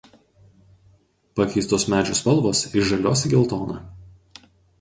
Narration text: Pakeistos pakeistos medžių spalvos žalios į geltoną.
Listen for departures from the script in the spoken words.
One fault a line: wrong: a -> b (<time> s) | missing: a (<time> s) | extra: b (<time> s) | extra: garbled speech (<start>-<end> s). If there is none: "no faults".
missing: pakeistos (1.9 s)
extra: iš (2.7 s)